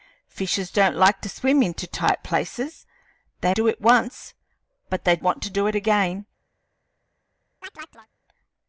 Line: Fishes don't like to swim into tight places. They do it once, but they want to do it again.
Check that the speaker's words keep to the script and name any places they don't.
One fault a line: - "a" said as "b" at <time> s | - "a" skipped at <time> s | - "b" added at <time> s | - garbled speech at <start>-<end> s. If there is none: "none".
none